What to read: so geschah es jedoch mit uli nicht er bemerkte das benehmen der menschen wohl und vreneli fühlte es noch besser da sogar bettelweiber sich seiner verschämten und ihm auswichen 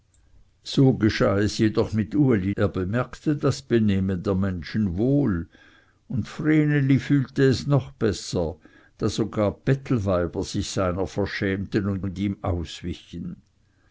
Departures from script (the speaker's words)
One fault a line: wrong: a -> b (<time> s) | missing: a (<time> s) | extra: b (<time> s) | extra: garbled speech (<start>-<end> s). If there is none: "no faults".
missing: nicht (2.5 s)
extra: und (12.0 s)